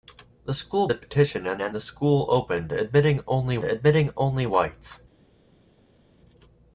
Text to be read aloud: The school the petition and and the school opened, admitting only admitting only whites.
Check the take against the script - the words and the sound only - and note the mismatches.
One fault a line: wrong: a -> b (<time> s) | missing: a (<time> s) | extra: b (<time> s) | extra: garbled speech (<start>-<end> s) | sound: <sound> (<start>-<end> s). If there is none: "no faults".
no faults